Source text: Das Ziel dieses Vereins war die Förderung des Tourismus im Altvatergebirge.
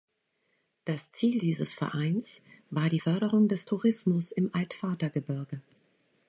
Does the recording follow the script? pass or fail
pass